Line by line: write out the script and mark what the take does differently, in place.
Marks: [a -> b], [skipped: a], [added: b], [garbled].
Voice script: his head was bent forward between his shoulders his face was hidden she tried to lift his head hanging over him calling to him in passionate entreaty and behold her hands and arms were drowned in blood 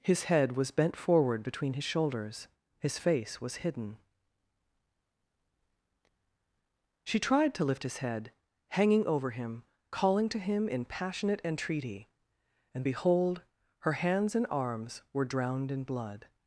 his head was bent forward between his shoulders his face was hidden she tried to lift his head hanging over him calling to him in passionate entreaty and behold her hands and arms were drowned in blood